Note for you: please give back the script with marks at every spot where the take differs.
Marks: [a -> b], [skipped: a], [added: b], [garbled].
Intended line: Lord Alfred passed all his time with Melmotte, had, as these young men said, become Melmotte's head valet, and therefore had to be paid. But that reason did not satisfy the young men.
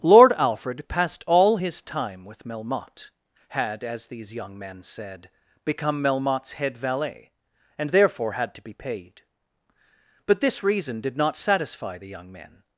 Lord Alfred passed all his time with Melmotte, had, as these young men said, become Melmotte's head valet, and therefore had to be paid. But [that -> this] reason did not satisfy the young men.